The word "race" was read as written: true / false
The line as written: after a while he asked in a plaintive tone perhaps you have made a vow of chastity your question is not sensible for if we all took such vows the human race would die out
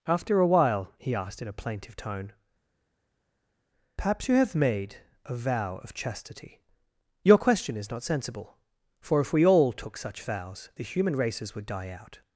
false